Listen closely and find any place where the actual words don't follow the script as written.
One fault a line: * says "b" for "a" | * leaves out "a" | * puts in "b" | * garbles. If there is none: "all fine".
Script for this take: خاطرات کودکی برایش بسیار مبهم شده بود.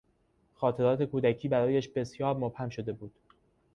all fine